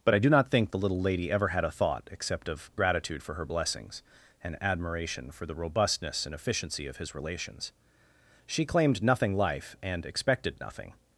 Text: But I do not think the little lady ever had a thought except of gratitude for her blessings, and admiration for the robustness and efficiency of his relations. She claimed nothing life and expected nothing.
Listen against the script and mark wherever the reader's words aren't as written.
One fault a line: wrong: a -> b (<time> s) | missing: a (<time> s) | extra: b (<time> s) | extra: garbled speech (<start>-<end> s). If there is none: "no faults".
no faults